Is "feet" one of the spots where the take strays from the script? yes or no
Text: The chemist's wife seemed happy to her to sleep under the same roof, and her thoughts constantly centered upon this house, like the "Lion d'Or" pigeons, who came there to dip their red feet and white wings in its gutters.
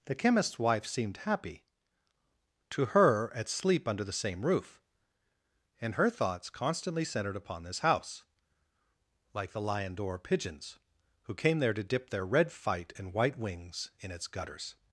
yes